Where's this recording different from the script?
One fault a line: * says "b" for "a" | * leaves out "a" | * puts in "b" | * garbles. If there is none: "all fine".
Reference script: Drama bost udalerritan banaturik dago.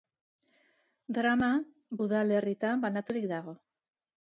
* leaves out "bost"